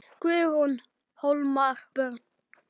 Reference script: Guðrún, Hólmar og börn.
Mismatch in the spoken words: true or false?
true